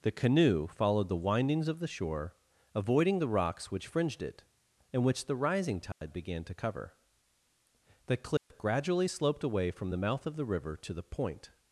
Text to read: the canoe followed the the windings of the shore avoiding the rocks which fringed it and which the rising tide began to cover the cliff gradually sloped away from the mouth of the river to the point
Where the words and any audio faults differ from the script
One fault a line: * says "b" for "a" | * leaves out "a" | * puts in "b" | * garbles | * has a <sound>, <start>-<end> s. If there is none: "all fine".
* leaves out "the"
* has a dropout, 5.9-6.0 s
* has a dropout, 8.4-8.5 s